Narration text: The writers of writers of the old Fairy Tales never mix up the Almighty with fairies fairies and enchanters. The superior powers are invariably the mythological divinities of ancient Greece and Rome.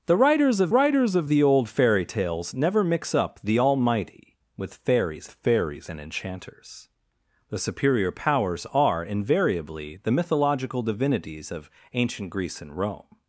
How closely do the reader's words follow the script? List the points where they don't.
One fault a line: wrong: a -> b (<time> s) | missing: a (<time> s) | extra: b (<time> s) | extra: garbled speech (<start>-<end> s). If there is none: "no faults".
no faults